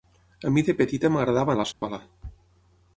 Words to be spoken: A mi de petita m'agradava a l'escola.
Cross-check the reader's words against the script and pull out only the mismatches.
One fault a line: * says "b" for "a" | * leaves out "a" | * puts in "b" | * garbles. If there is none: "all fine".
all fine